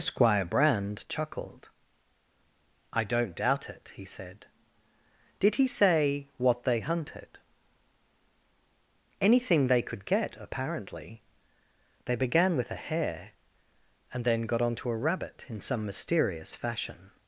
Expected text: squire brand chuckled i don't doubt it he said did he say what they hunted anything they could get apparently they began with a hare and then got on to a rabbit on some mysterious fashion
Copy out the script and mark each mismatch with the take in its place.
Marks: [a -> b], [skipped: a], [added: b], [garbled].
squire brand chuckled i don't doubt it he said did he say what they hunted anything they could get apparently they began with a hare and then got on to a rabbit [on -> in] some mysterious fashion